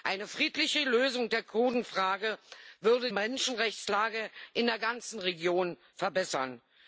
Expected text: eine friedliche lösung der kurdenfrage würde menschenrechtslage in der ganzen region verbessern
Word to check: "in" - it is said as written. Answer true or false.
true